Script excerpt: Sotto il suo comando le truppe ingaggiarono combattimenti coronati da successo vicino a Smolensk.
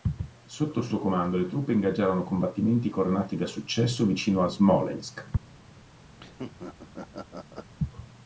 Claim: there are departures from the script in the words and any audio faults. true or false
true